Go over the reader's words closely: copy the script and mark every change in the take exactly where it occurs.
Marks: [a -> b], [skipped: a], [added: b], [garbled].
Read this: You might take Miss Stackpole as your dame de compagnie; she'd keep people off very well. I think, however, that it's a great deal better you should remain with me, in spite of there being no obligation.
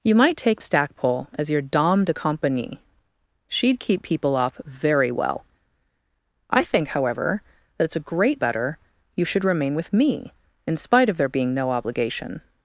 You might take [skipped: Miss] Stackpole as your dame de compagnie; she'd keep people off very well. I think, however, that it's a great [skipped: deal] better you should remain with me, in spite of there being no obligation.